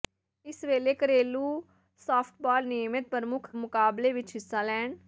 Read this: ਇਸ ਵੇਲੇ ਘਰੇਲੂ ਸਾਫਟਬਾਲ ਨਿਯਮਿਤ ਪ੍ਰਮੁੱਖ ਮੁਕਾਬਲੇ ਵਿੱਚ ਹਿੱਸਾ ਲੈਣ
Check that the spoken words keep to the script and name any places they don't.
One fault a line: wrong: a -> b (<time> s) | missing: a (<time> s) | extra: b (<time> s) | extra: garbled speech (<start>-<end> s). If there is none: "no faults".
no faults